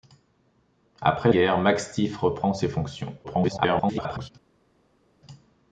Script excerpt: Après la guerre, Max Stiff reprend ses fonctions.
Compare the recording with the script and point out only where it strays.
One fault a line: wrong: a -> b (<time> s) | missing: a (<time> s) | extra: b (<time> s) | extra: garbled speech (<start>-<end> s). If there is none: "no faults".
missing: la (1.3 s)
extra: garbled speech (3.2-4.3 s)